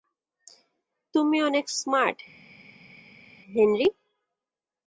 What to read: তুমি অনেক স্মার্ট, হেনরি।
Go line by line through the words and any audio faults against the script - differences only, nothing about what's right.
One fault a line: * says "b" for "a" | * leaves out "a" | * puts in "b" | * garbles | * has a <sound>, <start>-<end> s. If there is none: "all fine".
all fine